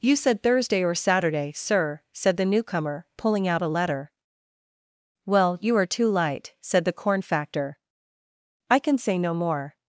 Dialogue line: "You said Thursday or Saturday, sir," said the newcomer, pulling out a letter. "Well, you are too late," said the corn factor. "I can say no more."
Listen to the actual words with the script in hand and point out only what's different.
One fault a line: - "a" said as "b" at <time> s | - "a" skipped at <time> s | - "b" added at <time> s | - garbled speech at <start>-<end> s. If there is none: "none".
- "late" said as "light" at 6.1 s